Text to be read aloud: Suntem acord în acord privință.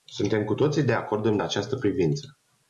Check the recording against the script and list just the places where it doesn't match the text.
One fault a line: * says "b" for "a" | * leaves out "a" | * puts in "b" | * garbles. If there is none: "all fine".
* puts in "cu toții de"
* says "această" for "acord"